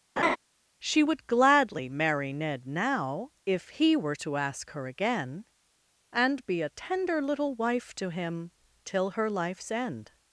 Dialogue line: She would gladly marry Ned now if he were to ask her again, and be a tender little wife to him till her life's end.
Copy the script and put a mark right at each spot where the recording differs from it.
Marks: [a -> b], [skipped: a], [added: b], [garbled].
She would gladly marry Ned now if he were to ask her again, and be a tender little wife to him till her life's end.